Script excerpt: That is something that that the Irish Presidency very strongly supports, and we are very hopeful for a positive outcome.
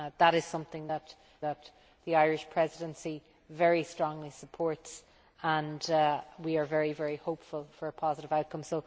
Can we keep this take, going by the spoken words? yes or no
yes